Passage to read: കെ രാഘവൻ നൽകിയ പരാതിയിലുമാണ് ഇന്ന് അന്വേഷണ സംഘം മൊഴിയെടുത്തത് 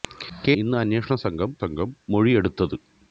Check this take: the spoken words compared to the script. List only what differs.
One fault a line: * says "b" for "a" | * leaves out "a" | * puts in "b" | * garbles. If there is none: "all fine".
* leaves out "രാഘവൻ നൽകിയ പരാതിയിലുമാണ്"
* puts in "സംഘം"